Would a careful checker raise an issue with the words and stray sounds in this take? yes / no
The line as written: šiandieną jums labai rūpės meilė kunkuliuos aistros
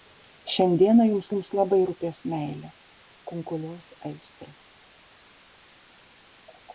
yes